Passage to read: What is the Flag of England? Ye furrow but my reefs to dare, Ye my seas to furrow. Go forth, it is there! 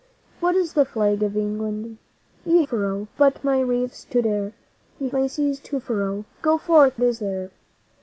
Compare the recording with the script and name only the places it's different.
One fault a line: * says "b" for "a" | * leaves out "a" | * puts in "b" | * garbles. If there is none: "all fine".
all fine